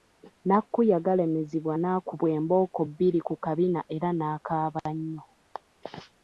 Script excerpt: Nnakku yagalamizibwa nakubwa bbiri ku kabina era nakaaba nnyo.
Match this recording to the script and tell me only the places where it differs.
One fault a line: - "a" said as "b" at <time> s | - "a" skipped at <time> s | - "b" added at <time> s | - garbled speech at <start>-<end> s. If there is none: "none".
- "embooko" added at 2.4 s